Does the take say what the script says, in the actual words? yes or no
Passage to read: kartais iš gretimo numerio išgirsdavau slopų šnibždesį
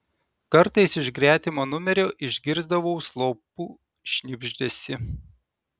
yes